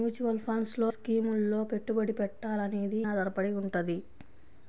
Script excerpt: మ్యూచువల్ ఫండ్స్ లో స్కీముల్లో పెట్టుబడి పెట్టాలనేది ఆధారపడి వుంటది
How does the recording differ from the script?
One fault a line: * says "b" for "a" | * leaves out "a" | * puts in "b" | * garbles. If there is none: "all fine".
all fine